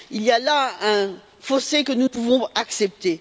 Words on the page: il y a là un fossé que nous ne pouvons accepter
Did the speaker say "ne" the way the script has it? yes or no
no